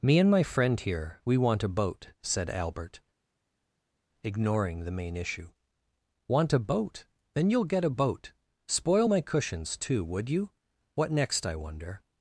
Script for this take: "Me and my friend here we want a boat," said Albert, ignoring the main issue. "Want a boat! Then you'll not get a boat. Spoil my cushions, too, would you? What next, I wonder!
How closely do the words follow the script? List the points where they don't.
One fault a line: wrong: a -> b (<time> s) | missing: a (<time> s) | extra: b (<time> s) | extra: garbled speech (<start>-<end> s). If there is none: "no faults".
missing: not (7.6 s)